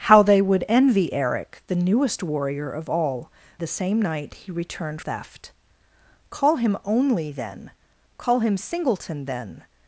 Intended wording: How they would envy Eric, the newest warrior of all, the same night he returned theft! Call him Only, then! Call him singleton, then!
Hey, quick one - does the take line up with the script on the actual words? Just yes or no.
yes